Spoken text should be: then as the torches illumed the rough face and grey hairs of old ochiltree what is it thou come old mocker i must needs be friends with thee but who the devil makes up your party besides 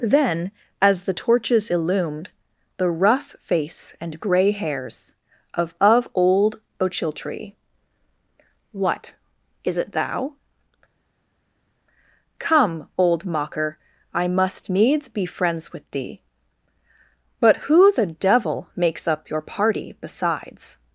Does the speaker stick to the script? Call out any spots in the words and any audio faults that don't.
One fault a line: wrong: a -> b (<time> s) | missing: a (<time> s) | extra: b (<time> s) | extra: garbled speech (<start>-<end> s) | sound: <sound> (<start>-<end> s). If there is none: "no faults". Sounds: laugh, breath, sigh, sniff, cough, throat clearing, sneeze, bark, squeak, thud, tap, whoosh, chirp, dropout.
extra: of (5.8 s)